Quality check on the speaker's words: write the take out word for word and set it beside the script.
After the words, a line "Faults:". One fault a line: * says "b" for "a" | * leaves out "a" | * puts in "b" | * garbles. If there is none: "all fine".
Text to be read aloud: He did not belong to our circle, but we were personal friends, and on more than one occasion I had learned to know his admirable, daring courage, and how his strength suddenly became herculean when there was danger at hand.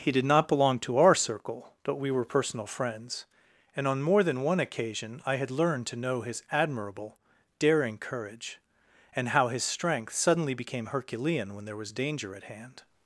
He did not belong to our circle, but we were personal friends, and on more than one occasion I had learned to know his admirable, daring courage, and how his strength suddenly became herculean when there was danger at hand.
Faults:
all fine